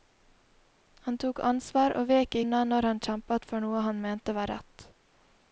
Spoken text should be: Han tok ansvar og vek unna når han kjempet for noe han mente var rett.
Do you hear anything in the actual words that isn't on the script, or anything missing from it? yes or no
no